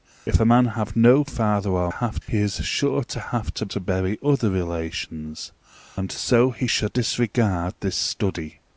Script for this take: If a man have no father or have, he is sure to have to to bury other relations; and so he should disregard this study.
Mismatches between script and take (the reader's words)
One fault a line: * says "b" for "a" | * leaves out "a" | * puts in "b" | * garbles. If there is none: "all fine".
all fine